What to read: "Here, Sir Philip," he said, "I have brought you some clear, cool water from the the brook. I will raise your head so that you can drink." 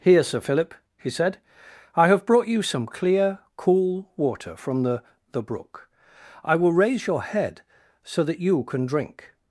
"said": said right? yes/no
yes